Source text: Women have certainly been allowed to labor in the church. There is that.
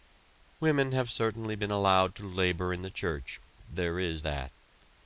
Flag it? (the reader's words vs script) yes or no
no